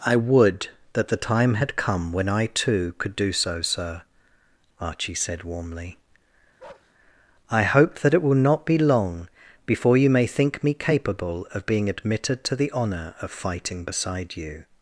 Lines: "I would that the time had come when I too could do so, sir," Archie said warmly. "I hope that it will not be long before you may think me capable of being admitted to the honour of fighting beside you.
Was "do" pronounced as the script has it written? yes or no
yes